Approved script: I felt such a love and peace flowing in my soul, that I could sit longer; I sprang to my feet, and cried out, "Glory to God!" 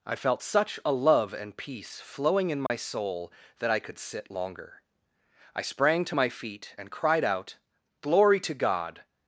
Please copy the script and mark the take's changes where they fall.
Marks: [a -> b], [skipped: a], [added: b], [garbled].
I felt such a love and peace flowing in my soul, that I could sit longer; I sprang to my feet, and cried out, "Glory to God!"